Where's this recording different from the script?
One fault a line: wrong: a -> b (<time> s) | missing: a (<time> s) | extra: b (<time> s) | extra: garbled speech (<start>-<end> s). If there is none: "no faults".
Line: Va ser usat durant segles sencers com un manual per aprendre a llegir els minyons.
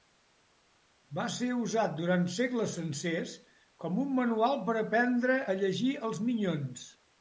no faults